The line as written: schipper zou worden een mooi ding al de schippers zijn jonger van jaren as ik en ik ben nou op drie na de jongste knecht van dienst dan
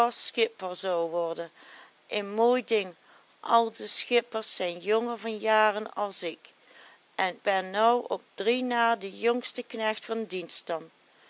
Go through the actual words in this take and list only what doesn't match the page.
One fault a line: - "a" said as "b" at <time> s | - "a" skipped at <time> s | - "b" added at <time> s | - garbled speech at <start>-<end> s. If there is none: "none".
- "ik" skipped at 7.4 s